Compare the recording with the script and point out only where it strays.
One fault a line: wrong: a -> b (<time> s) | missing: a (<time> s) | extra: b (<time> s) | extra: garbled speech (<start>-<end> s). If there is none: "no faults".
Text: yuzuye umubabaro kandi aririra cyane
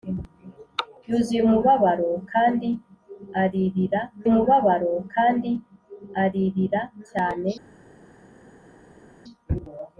extra: umubabaro kandi aririra (4.3 s)